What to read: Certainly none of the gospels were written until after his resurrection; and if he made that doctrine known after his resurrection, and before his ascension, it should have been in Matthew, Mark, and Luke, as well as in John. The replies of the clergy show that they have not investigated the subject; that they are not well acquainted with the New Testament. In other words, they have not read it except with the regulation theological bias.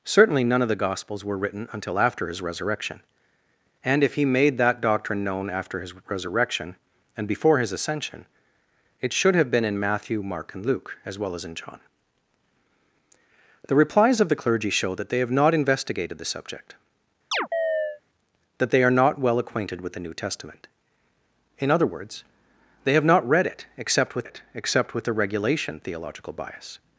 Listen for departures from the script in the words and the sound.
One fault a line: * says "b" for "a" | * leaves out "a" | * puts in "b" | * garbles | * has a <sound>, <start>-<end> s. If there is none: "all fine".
* has a chirp, 17.3-18.0 s
* puts in "it except with"